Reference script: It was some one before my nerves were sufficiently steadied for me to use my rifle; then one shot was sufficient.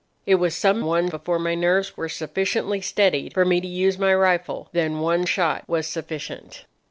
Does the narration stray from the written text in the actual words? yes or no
no